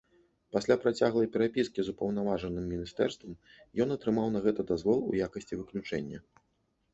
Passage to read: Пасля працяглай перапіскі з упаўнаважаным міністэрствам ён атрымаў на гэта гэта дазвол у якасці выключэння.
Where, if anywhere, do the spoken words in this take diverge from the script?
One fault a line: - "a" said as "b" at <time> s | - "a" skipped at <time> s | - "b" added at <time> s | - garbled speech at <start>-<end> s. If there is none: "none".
- "гэта" skipped at 4.6 s